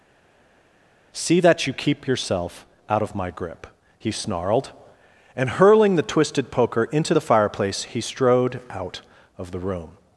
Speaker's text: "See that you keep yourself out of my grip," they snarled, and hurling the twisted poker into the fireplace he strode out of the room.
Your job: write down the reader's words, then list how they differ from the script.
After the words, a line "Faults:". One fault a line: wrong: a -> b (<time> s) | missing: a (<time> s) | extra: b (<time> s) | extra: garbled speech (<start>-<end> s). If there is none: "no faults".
"See that you keep yourself out of my grip," he snarled, and hurling the twisted poker into the fireplace he strode out of the room.
Faults:
wrong: they -> he (4.0 s)